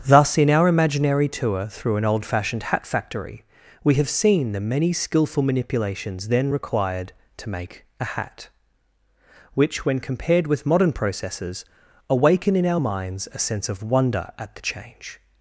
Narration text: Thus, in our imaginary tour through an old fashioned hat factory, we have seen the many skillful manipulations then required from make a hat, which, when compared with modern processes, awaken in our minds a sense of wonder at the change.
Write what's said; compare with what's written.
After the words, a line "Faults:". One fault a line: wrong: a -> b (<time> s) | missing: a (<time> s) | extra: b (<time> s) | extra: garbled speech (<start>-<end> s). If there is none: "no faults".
Thus, in our imaginary tour through an old fashioned hat factory, we have seen the many skillful manipulations then required to make a hat, which, when compared with modern processes, awaken in our minds a sense of wonder at the change.
Faults:
wrong: from -> to (7.4 s)